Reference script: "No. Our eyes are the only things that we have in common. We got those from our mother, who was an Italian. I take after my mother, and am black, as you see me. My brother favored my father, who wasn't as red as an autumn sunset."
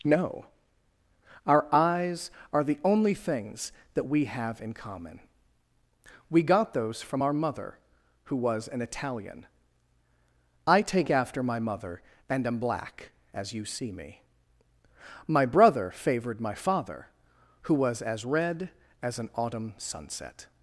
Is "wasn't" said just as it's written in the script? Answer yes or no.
no